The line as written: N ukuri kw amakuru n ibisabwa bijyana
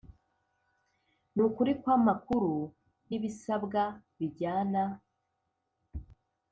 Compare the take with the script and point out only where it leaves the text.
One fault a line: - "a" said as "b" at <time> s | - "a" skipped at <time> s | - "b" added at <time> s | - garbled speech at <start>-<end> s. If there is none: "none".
none